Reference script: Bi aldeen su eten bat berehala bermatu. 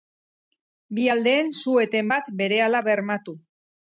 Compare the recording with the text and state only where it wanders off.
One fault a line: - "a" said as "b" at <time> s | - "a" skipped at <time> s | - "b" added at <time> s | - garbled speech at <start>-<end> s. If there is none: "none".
none